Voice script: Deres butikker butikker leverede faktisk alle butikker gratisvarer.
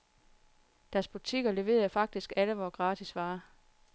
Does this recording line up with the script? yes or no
no